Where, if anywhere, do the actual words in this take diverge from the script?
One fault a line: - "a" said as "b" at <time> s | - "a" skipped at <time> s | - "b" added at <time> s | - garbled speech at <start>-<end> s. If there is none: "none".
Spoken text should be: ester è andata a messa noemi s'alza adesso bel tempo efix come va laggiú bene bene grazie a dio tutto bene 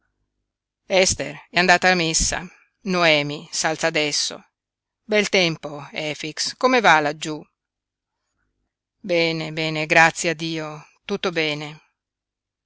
none